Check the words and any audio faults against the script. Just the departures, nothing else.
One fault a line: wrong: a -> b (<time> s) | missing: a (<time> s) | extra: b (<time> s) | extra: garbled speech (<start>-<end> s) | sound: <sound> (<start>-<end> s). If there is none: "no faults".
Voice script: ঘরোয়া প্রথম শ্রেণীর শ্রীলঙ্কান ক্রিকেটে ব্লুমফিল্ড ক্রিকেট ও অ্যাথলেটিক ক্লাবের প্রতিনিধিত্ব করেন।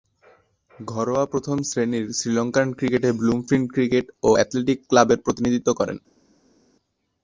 no faults